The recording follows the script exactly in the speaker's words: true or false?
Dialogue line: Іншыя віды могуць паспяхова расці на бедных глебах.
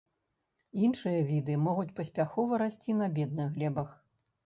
true